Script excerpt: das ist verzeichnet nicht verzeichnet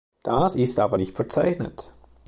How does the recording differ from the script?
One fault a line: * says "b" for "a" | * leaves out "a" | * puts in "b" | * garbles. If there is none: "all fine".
* says "aber" for "verzeichnet"